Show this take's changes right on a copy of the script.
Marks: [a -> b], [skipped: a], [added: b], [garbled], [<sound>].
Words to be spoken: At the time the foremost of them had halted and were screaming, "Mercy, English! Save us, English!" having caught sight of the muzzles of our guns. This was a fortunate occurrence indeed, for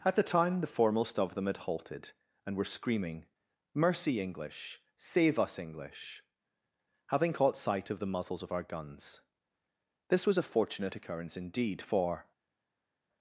At the time the foremost of them had halted and were screaming, "Mercy, English! Save us, English!" having caught sight of the muzzles of our guns. This was a fortunate occurrence indeed, for